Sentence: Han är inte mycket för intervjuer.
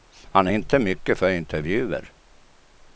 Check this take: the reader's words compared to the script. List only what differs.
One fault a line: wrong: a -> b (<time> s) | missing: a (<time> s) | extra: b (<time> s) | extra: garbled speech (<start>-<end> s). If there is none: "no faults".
no faults